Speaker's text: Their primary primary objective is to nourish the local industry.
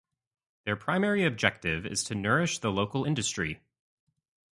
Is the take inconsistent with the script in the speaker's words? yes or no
yes